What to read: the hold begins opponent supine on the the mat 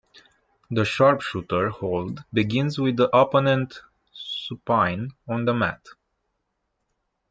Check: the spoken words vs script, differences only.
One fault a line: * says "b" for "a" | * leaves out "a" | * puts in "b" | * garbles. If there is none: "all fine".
* puts in "sharpshooter"
* puts in "with the"
* leaves out "the"